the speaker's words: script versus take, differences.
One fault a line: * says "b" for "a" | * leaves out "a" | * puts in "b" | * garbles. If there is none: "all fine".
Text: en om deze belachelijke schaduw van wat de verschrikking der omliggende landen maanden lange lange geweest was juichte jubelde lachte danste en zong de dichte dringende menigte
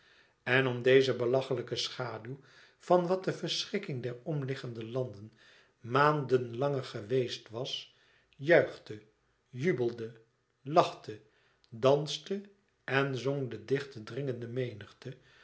* leaves out "lange"